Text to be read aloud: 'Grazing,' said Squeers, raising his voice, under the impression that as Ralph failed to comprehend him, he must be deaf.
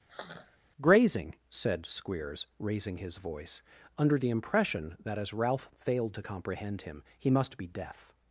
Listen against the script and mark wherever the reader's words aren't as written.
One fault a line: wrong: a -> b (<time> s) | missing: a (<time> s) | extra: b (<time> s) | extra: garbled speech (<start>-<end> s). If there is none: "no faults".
no faults